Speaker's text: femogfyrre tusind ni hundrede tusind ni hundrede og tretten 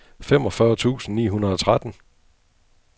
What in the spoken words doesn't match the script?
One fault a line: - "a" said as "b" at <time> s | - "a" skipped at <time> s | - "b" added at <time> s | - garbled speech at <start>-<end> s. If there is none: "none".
- "tusind ni hundrede" skipped at 1.5 s